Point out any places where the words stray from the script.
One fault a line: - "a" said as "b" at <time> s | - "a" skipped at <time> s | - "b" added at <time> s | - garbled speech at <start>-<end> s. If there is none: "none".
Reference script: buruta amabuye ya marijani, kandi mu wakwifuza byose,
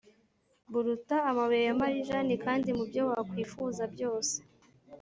- "byo" added at 2.9 s